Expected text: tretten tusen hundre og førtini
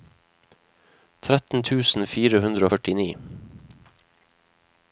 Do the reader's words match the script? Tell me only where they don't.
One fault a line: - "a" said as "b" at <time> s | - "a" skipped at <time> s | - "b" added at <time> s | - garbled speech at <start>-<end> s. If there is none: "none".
- "fire" added at 2.1 s